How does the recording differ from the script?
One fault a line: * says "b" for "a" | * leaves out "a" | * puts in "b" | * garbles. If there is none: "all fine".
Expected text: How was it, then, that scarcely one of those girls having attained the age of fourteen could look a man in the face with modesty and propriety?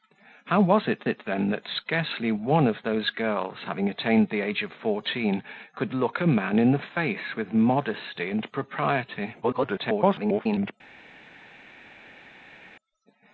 * puts in "it"
* garbles